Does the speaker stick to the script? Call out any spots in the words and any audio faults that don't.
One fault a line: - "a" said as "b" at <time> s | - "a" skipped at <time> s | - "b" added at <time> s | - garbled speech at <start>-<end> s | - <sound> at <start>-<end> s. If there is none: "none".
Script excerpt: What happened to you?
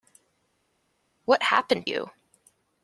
- "to" skipped at 1.9 s